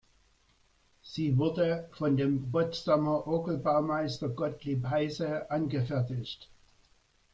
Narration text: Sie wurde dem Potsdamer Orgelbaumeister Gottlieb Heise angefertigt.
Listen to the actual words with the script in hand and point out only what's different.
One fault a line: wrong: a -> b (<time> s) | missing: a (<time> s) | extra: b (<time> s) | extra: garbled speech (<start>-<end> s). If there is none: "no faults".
extra: von (1.9 s)